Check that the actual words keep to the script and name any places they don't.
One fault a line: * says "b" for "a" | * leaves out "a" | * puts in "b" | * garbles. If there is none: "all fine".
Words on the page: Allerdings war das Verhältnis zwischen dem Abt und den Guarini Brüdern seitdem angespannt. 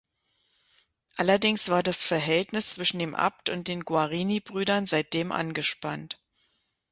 all fine